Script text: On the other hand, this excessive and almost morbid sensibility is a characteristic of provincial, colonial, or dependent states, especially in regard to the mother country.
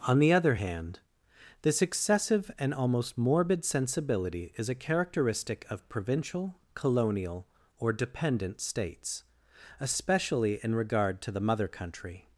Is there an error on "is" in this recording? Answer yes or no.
no